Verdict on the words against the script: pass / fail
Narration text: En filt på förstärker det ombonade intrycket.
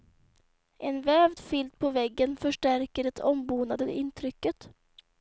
fail